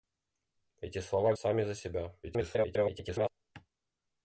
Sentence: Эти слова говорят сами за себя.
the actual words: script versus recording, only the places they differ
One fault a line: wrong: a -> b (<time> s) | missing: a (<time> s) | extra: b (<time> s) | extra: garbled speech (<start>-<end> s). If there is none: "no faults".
missing: говорят (1.4 s)
extra: garbled speech (2.2-3.3 s)